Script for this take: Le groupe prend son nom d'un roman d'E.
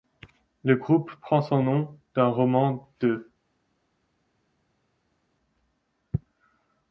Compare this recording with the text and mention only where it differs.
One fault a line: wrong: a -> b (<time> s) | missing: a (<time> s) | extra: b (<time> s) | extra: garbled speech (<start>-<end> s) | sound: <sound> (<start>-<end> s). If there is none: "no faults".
no faults